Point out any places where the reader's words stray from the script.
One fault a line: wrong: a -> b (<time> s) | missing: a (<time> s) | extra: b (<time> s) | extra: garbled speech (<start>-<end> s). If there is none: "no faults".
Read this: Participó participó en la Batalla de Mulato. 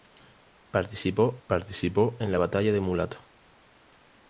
no faults